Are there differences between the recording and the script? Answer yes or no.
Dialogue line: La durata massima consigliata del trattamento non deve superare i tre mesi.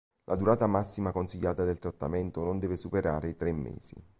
no